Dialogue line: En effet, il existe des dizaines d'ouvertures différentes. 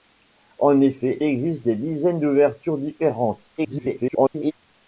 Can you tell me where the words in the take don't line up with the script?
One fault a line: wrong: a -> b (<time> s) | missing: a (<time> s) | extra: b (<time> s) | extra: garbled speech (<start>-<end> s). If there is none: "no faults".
missing: il (1.2 s)
extra: garbled speech (3.6-4.5 s)